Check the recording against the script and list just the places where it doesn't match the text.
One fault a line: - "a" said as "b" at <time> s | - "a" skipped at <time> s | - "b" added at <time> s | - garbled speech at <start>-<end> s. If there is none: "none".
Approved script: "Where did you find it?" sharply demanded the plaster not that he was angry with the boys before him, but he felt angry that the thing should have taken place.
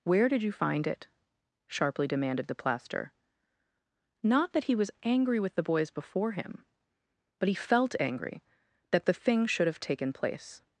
none